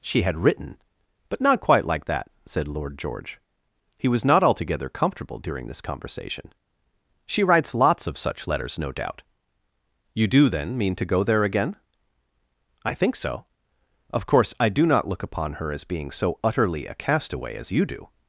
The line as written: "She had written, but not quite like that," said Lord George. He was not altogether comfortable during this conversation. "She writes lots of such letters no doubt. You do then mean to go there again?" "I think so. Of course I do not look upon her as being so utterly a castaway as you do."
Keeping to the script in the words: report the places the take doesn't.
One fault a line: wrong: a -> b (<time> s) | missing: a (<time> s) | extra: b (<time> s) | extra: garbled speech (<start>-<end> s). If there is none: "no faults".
no faults